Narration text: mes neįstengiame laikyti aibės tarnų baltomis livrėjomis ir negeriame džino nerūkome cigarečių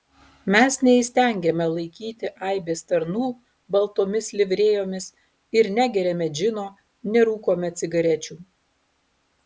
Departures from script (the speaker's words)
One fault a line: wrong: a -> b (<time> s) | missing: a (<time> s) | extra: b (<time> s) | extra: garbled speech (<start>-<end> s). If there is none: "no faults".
no faults